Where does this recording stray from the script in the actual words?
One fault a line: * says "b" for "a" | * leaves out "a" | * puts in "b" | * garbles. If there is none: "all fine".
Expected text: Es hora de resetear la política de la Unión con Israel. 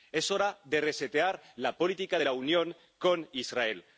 all fine